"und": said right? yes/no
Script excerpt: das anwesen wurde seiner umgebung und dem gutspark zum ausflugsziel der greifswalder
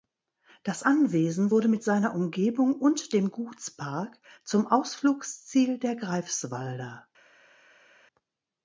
yes